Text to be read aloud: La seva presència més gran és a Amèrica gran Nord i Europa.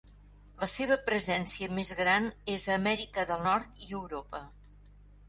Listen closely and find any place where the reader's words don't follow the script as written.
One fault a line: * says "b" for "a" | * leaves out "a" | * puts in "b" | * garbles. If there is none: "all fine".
* says "del" for "gran"